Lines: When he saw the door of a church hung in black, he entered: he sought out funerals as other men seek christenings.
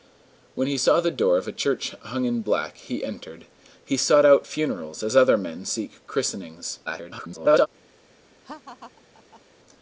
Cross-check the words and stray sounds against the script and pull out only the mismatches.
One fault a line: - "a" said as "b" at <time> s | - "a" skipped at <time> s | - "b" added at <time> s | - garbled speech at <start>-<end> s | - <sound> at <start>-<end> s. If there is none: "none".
- garbled speech at 6.9-7.7 s
- laugh at 8.4-9.4 s